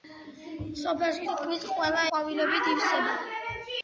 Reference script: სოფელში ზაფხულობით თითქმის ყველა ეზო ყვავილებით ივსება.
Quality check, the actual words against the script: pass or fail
fail